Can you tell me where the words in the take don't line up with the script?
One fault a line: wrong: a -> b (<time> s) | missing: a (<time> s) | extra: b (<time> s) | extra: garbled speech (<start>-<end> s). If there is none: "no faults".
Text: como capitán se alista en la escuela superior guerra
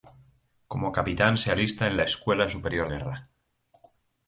no faults